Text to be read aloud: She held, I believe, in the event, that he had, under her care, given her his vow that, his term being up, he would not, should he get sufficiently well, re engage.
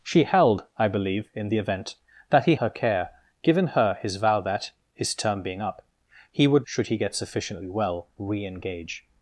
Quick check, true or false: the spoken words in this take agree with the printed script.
false